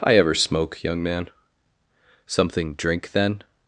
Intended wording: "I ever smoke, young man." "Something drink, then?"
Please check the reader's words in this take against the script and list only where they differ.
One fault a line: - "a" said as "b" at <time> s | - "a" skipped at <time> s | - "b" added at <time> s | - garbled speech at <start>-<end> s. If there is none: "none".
none